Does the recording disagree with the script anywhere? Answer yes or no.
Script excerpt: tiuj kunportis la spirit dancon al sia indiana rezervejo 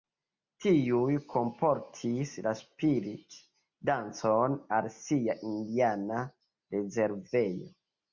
no